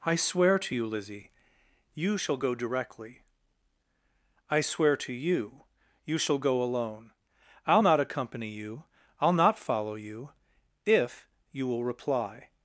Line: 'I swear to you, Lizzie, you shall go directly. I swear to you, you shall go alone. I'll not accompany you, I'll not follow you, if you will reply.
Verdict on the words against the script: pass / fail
pass